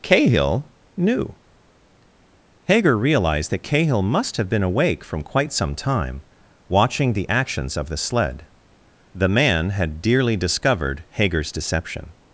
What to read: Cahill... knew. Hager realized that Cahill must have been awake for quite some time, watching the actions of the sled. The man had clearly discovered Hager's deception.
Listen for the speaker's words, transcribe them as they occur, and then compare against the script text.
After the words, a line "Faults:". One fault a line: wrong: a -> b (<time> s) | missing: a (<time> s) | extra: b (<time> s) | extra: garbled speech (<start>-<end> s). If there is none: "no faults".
Cahill... knew. Hager realized that Cahill must have been awake from quite some time, watching the actions of the sled. The man had dearly discovered Hager's deception.
Faults:
wrong: for -> from (5.0 s)
wrong: clearly -> dearly (10.0 s)